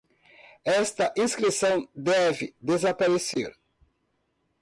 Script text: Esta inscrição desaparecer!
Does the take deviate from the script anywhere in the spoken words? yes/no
yes